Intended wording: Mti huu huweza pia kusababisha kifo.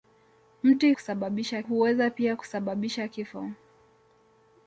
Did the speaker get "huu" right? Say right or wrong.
wrong